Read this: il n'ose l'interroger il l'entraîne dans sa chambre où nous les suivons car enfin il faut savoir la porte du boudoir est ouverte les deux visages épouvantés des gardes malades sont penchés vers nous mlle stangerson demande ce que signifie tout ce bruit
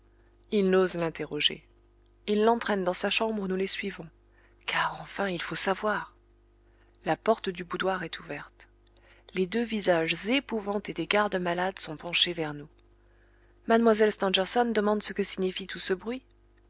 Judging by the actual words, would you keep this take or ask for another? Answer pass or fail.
pass